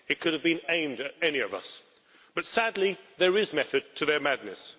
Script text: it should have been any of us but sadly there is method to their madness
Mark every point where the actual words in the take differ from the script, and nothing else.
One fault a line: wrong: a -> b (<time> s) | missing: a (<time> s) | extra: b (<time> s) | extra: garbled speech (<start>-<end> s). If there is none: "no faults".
wrong: should -> could (0.2 s)
extra: aimed at (0.7 s)